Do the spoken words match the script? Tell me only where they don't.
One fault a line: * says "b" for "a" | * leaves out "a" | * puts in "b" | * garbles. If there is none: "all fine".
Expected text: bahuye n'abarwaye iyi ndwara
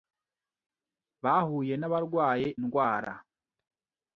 * leaves out "iyi"